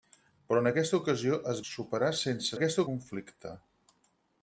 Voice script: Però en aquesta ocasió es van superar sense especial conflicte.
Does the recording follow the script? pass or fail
fail